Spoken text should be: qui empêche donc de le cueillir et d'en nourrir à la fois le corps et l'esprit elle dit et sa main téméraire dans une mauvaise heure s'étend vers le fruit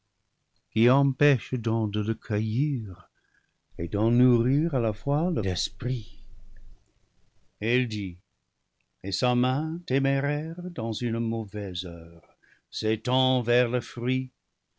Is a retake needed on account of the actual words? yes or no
yes